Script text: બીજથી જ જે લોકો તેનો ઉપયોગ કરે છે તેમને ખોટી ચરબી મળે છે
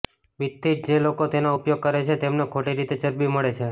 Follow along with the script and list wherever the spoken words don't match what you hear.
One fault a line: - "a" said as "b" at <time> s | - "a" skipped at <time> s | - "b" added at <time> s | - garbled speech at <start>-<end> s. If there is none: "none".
- "રીતે" added at 2.8 s